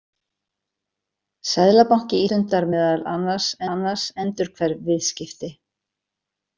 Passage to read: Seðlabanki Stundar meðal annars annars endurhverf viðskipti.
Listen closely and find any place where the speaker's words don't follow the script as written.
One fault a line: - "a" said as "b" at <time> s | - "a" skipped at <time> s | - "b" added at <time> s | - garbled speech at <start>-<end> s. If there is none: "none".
none